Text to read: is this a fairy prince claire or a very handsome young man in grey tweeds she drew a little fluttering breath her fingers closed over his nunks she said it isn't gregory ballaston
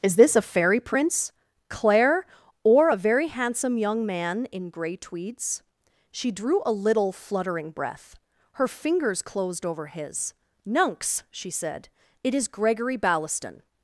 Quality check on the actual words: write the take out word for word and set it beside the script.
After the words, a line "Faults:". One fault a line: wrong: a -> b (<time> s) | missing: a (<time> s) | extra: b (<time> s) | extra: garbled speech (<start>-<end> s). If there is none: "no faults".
is this a fairy prince claire or a very handsome young man in grey tweeds she drew a little fluttering breath her fingers closed over his nunks she said it is gregory ballaston
Faults:
wrong: isn't -> is (12.3 s)